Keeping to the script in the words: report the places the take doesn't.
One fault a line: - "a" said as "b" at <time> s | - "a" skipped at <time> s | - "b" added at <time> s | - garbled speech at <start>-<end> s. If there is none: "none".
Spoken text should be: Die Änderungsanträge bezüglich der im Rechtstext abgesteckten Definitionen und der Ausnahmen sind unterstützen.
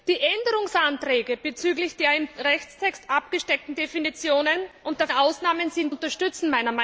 none